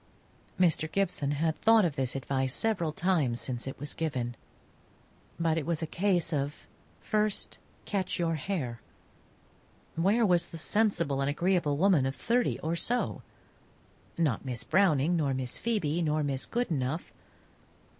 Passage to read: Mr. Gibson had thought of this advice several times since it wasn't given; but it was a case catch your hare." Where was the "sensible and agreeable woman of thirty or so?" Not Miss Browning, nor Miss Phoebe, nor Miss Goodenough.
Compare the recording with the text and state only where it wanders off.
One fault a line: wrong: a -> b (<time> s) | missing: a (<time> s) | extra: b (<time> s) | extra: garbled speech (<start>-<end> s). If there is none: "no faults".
wrong: wasn't -> was (3.8 s)
extra: of first (6.3 s)